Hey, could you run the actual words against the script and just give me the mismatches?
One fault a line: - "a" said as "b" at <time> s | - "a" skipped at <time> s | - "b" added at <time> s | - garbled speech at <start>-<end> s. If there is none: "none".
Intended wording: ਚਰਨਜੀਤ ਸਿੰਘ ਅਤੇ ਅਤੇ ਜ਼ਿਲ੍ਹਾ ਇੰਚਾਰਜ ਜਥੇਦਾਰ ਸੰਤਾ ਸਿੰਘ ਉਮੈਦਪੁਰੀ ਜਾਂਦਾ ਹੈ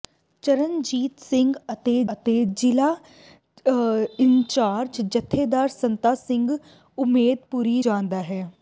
none